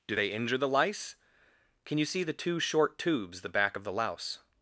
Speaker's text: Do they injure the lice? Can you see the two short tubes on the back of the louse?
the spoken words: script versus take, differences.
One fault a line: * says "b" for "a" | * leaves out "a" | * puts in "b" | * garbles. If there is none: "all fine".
* leaves out "on"